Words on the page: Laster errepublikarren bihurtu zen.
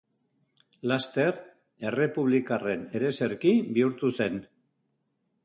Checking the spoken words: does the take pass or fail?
fail